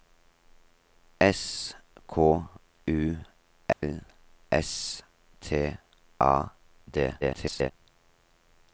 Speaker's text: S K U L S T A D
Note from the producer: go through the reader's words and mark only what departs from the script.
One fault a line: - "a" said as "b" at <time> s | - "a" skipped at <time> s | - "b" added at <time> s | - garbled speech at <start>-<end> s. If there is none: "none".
- garbled speech at 7.2-7.7 s